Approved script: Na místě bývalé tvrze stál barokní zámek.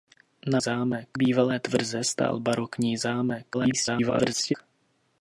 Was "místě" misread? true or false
true